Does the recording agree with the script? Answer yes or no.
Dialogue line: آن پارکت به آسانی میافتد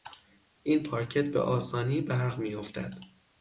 no